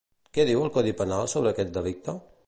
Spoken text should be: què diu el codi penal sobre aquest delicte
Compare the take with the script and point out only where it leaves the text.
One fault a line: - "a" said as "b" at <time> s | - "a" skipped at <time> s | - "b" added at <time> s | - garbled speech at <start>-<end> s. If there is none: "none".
none